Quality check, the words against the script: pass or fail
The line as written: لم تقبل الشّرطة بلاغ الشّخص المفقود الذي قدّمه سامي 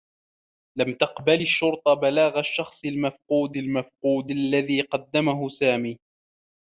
fail